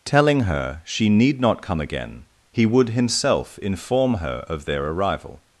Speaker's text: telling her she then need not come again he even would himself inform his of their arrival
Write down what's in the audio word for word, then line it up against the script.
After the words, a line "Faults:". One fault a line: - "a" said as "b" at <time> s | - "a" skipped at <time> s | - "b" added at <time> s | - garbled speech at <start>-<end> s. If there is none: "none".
telling her she need not come again he would himself inform her of their arrival
Faults:
- "then" skipped at 1.1 s
- "even" skipped at 2.6 s
- "his" said as "her" at 4.2 s